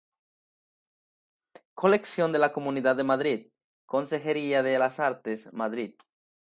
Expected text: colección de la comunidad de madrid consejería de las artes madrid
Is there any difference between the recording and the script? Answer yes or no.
no